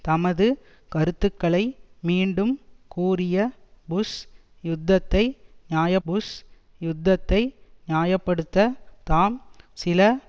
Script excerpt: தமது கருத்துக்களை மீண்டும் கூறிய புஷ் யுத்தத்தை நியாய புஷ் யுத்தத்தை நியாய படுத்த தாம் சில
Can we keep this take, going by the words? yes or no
yes